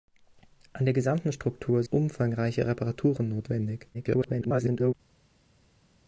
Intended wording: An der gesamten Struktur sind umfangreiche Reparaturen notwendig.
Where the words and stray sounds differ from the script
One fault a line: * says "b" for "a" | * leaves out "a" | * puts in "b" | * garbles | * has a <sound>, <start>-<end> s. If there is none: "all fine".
* leaves out "sind"
* garbles